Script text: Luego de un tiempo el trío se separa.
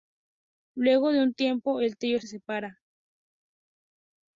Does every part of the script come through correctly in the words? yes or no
yes